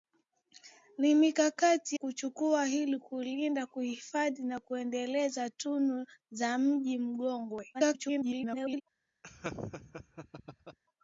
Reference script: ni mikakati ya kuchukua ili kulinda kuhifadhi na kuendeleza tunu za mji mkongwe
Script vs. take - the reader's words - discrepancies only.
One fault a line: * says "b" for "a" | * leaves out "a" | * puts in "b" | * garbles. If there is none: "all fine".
* leaves out "ya"
* garbles